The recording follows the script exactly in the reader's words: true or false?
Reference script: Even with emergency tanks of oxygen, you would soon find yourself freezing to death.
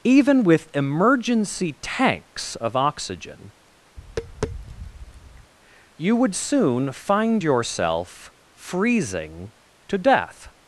true